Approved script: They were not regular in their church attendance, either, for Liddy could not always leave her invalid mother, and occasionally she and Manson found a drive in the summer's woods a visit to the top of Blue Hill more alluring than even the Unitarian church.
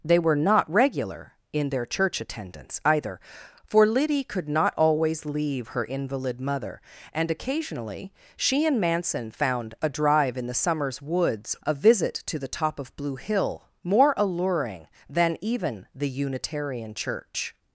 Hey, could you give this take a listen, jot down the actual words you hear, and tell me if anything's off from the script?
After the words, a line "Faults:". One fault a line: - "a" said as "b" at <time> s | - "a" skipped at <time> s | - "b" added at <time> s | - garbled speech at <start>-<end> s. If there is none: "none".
They were not regular in their church attendance, either, for Liddy could not always leave her invalid mother, and occasionally she and Manson found a drive in the summer's woods a visit to the top of Blue Hill more alluring than even the Unitarian church.
Faults:
none